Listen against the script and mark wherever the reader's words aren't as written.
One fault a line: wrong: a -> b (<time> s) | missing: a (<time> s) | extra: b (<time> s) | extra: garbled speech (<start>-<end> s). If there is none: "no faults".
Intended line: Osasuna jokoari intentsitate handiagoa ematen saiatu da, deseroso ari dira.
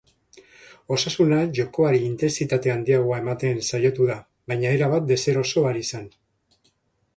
extra: baina erabat (4.5 s)
wrong: dira -> zen (5.9 s)